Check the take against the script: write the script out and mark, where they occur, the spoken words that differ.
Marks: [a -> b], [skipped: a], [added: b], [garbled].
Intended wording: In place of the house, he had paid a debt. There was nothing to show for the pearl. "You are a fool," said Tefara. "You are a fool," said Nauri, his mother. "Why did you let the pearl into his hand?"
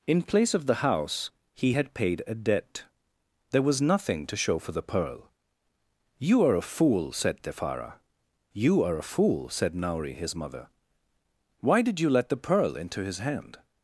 In place of the house, he had paid a debt. There was nothing to show for the pearl. "You are a fool," said Tefara. "You are a fool," said Nauri, his mother. "Why did you let the pearl into his hand?"